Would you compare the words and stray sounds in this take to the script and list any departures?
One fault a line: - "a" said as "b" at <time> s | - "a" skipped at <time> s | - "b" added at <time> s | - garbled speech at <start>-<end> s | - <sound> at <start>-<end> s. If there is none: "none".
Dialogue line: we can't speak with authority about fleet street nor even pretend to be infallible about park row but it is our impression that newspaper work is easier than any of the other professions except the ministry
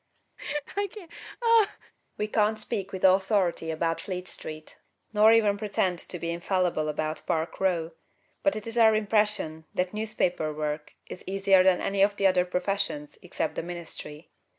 - laugh at 0.4-1.9 s